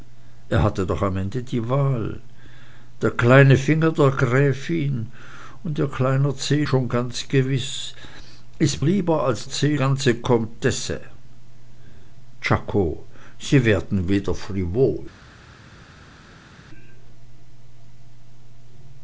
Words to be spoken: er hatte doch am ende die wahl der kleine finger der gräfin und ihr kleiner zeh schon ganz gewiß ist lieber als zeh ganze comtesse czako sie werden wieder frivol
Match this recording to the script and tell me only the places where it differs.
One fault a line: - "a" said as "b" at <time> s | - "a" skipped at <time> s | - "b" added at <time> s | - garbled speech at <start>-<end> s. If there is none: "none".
none